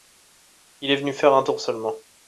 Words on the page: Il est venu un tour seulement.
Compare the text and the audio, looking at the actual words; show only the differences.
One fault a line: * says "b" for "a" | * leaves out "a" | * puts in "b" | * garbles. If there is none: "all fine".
* puts in "faire"